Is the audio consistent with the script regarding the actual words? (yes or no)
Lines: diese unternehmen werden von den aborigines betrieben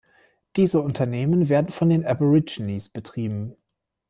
yes